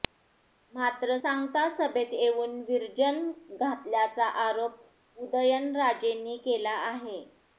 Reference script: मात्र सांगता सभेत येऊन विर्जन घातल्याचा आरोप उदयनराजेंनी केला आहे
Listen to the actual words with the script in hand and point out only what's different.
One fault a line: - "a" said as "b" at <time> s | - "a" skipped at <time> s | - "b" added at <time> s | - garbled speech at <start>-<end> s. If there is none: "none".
none